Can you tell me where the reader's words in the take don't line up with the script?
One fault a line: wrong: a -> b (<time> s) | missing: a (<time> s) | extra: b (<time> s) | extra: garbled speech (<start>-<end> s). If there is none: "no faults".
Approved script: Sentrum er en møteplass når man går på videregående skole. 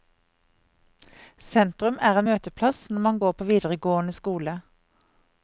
no faults